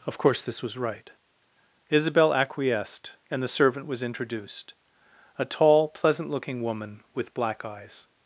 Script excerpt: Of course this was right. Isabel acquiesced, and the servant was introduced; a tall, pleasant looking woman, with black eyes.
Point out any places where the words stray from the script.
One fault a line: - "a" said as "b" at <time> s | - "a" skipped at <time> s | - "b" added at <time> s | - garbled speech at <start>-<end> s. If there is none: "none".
none